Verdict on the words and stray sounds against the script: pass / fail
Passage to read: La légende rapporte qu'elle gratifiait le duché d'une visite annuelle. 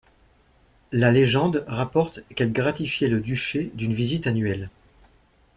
pass